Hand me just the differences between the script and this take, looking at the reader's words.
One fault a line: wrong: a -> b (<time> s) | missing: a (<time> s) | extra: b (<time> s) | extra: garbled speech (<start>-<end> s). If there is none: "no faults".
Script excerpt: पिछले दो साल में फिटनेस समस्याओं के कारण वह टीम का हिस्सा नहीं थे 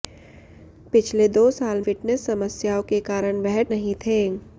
missing: में (1.8 s)
missing: टीम का हिस्सा (3.6 s)